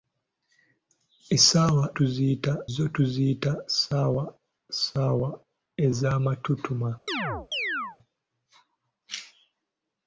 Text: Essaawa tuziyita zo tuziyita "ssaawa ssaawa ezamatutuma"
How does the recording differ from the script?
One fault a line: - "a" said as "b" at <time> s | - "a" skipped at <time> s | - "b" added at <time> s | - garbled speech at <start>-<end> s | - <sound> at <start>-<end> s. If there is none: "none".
- chirp at 7.1-8.0 s